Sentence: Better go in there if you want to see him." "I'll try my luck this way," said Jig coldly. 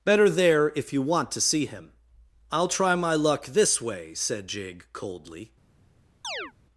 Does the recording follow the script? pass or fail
fail